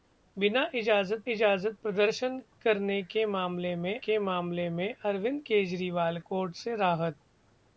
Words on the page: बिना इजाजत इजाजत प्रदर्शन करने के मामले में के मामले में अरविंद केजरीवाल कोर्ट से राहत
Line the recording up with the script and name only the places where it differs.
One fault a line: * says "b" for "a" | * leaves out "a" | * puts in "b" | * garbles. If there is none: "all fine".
all fine